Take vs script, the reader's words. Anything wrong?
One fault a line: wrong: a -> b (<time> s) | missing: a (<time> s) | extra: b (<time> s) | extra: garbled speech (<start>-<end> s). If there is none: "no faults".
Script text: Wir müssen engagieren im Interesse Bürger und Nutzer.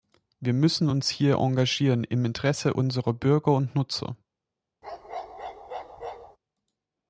extra: uns hier (0.9 s)
extra: unserer (2.7 s)